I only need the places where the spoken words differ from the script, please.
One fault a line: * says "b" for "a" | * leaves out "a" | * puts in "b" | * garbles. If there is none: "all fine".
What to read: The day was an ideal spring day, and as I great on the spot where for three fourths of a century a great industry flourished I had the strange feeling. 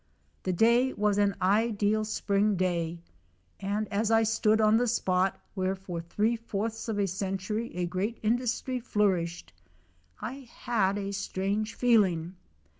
* says "stood" for "great"
* says "a" for "the"